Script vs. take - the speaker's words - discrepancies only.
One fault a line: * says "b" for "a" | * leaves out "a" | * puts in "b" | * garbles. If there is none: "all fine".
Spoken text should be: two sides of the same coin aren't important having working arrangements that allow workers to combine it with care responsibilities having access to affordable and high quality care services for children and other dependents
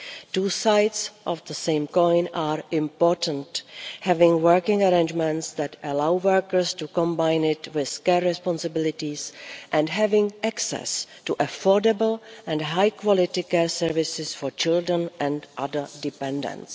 * says "are" for "aren't"
* puts in "and"